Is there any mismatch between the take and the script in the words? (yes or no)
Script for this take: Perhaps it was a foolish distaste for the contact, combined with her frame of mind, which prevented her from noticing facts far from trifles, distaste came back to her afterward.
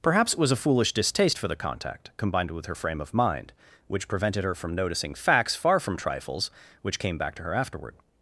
yes